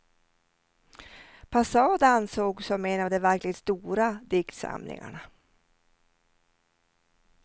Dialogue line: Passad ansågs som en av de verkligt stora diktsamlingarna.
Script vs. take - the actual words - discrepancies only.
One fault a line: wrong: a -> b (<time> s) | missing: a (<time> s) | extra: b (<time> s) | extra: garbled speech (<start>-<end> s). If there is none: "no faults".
no faults